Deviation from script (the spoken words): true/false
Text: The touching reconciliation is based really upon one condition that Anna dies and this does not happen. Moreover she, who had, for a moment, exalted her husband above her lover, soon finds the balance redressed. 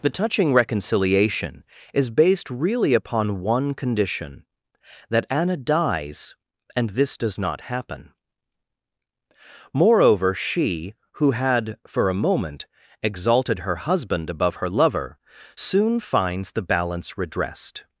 false